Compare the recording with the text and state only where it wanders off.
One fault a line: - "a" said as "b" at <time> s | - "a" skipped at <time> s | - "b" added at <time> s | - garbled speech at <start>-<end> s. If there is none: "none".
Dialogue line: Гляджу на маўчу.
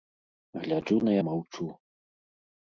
none